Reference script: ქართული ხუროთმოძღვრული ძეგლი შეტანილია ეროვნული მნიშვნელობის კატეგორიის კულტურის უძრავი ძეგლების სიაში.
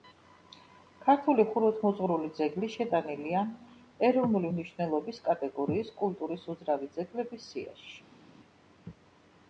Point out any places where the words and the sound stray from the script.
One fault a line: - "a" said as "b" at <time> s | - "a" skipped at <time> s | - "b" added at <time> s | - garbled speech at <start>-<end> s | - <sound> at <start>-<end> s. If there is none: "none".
none